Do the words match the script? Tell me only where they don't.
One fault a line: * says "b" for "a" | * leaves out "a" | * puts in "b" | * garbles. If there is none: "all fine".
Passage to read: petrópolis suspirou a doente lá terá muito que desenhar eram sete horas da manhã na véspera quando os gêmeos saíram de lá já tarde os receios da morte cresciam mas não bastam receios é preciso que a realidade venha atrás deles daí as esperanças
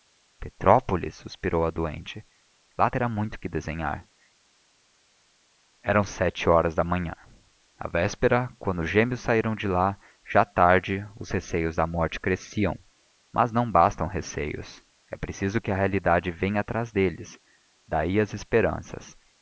all fine